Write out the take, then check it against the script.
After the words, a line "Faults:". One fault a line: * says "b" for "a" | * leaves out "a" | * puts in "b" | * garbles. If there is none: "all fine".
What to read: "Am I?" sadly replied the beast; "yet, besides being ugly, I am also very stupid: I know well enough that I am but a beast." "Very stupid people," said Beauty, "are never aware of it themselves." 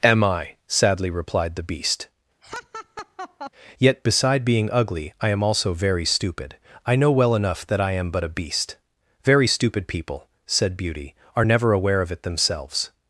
"Am I?" sadly replied the beast; "yet, beside being ugly, I am also very stupid: I know well enough that I am but a beast." "Very stupid people," said Beauty, "are never aware of it themselves."
Faults:
* says "beside" for "besides"